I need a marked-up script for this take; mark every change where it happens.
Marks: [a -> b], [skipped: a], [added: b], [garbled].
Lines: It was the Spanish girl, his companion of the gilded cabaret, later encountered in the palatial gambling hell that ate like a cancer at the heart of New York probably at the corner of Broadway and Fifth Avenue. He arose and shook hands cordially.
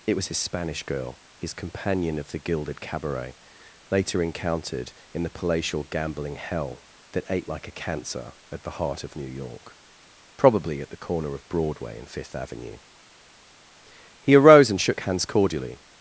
It was [the -> his] Spanish girl, his companion of the gilded cabaret, later encountered in the palatial gambling hell that ate like a cancer at the heart of New York probably at the corner of Broadway and Fifth Avenue. He arose and shook hands cordially.